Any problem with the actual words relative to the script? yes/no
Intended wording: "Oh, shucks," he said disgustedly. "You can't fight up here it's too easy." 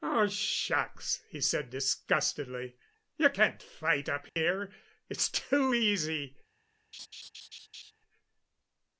no